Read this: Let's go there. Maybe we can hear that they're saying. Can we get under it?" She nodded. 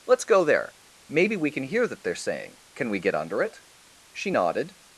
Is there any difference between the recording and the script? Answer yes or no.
no